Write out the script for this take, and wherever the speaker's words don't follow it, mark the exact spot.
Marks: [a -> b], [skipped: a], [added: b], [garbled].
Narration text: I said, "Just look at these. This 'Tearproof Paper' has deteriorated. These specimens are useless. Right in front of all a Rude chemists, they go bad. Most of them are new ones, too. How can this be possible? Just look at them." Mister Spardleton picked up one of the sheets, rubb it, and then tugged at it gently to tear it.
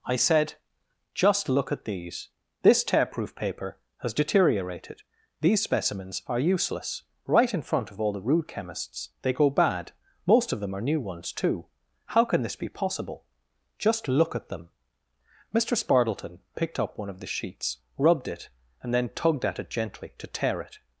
I said, "Just look at these. This 'Tearproof Paper' has deteriorated. These specimens are useless. Right in front of all [a -> the] Rude chemists, they go bad. Most of them are new ones, too. How can this be possible? Just look at them." Mister Spardleton picked up one of the sheets, [rubb -> rubbed] it, and then tugged at it gently to tear it.